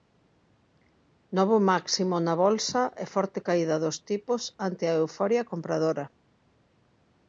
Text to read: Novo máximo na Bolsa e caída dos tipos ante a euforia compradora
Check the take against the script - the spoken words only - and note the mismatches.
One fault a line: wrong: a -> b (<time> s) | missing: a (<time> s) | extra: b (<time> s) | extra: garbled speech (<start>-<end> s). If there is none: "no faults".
extra: forte (3.1 s)